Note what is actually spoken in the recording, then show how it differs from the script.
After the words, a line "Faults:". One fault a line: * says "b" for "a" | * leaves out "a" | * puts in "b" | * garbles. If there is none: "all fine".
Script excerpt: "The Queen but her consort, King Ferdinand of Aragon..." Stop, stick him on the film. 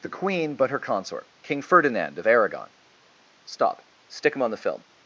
"The Queen but her consort, King Ferdinand of Aragon..." Stop, stick him on the film.
Faults:
all fine